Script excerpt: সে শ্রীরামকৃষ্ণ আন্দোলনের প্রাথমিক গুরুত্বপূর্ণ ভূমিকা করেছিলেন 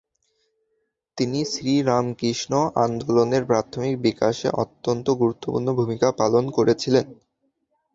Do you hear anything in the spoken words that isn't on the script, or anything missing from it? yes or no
yes